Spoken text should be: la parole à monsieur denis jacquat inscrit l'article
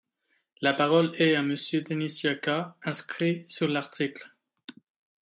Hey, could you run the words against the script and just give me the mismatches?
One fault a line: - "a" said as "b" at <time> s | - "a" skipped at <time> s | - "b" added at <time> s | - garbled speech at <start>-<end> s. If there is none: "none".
- "est" added at 1.2 s
- "sur" added at 3.5 s